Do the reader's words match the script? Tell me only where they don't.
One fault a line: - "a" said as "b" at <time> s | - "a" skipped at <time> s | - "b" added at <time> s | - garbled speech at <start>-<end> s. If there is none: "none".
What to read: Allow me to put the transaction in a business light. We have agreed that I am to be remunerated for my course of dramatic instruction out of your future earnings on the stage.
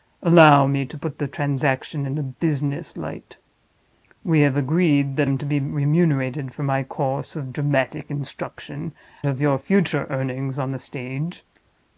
- "I" skipped at 5.3 s
- "out" skipped at 8.9 s